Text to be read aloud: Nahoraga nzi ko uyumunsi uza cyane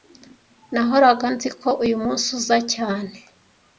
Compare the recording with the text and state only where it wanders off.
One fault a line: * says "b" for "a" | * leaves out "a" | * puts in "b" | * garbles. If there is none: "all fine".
all fine